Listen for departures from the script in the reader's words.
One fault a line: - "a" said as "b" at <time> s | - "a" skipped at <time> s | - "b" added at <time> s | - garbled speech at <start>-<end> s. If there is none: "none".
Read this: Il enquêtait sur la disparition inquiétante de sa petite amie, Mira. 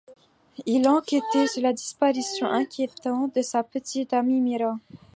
none